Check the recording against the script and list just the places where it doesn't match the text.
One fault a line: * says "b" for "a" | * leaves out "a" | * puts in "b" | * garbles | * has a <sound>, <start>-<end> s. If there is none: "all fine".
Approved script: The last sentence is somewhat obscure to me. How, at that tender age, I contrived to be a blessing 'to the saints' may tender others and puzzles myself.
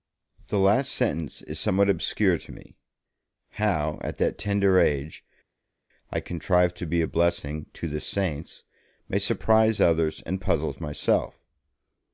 * says "surprise" for "tender"